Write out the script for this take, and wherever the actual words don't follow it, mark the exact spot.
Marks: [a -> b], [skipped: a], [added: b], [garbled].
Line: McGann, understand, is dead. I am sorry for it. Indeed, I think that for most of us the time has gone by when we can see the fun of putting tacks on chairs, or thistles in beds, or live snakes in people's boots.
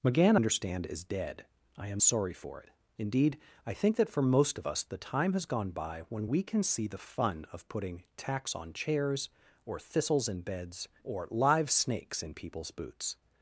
McGann, understand, is dead. I am sorry for it. Indeed, I think that for most of us the time has gone by when we can see the fun of putting tacks on chairs, or thistles in beds, or live snakes in people's boots.